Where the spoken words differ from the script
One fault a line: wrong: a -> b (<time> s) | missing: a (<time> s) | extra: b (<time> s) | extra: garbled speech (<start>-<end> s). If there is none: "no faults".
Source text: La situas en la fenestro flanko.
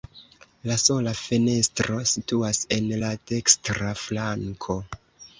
extra: sola fenestro (0.8 s)
wrong: fenestro -> dekstra (3.3 s)